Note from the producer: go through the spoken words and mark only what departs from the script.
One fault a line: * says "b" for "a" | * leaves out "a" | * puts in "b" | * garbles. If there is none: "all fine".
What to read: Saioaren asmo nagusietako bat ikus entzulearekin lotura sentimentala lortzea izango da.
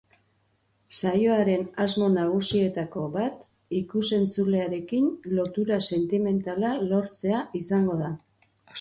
all fine